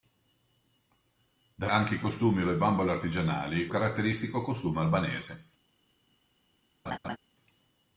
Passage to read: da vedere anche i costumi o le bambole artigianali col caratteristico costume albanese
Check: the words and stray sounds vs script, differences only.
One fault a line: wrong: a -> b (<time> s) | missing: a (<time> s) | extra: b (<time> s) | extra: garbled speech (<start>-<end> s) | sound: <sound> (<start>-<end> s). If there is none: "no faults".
missing: vedere (1.7 s)
missing: col (3.7 s)
sound: laugh (6.9-7.2 s)